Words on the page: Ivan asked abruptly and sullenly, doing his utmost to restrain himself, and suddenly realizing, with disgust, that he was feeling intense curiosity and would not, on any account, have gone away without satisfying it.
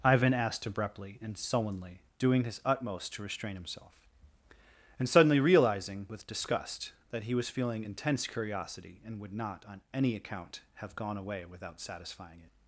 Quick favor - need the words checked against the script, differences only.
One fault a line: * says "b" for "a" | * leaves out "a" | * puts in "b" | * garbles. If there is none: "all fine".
all fine